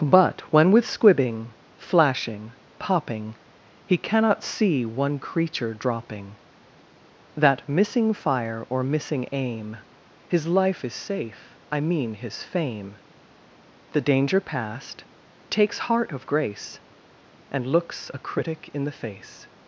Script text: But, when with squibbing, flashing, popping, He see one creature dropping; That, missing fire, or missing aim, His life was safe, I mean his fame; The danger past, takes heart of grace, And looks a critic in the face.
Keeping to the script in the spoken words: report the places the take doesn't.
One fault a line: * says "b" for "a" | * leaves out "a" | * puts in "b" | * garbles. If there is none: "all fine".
* puts in "cannot"
* says "is" for "was"